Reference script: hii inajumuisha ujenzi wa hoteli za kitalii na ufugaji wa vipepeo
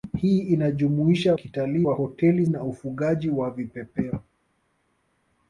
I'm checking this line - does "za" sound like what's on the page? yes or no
no